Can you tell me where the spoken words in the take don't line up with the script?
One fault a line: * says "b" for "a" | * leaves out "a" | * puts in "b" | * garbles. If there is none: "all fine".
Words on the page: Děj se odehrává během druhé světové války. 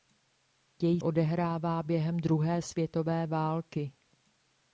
* leaves out "se"